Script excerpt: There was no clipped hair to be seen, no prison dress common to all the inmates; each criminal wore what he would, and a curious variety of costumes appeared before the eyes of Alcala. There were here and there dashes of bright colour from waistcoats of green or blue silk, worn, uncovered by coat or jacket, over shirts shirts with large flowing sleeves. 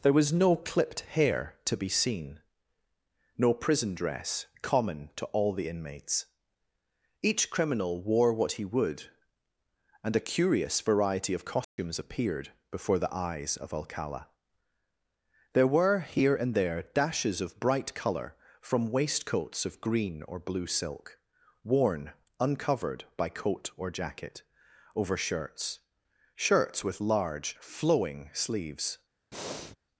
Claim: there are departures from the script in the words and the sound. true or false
true